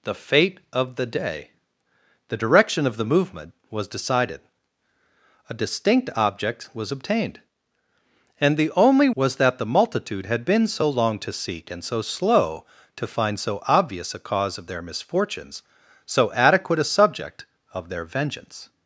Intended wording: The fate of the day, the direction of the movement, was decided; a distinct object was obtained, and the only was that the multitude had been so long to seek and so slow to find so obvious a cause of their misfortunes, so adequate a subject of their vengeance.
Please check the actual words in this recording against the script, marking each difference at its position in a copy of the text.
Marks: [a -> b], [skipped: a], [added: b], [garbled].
The fate of the day, the direction of the movement, was decided; a distinct object was obtained, and the only was that the multitude had been so long to seek and so slow to find so obvious a cause of their misfortunes, so adequate a subject of their vengeance.